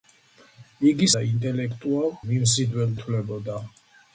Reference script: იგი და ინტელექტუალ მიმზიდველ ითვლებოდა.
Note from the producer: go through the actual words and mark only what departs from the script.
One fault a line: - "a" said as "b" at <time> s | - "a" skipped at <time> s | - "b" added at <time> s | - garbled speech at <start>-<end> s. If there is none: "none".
none